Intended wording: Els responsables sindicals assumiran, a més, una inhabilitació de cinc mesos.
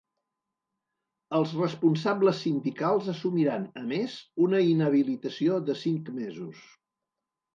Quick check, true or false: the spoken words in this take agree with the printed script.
true